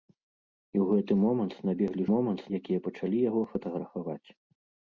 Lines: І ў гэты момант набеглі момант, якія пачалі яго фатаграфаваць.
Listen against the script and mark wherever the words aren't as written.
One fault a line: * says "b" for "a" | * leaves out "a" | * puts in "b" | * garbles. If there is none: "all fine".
all fine